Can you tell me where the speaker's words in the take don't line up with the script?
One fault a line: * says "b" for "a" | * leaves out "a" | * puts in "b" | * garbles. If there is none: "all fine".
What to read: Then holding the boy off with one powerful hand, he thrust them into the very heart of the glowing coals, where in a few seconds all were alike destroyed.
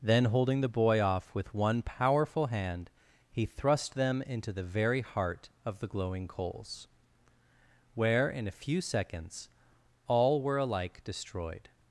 all fine